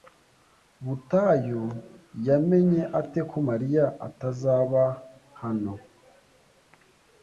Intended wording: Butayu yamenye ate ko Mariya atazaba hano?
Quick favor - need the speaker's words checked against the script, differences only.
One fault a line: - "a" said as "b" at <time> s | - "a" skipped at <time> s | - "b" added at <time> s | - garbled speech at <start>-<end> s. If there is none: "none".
none